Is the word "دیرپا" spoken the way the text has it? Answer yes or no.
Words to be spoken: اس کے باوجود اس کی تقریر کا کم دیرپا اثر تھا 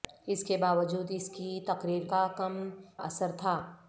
no